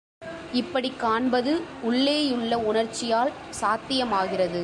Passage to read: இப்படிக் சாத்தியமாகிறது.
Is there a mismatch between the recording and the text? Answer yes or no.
yes